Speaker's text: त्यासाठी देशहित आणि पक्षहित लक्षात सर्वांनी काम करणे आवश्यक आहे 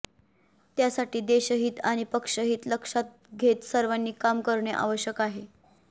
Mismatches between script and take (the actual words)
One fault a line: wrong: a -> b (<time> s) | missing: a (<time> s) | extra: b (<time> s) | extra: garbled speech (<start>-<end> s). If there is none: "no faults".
extra: घेत (3.4 s)